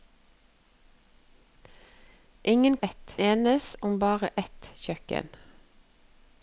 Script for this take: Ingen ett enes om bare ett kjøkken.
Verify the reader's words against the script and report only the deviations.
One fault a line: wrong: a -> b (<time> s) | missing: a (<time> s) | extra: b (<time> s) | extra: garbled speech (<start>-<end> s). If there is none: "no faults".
no faults